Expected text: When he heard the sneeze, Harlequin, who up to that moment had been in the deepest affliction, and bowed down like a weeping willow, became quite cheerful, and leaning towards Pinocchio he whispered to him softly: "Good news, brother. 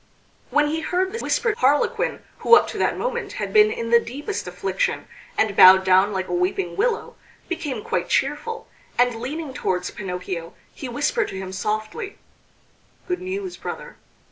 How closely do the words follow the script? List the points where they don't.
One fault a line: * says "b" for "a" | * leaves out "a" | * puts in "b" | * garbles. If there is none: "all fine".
* says "whispered" for "sneeze"